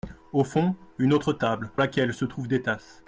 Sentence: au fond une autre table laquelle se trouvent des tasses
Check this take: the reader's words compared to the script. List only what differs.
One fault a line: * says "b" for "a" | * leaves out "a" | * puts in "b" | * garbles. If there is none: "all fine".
all fine